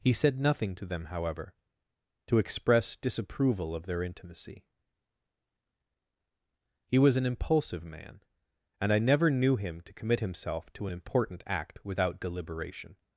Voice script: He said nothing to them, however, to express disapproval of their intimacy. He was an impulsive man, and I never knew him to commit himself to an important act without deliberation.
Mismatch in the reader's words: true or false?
false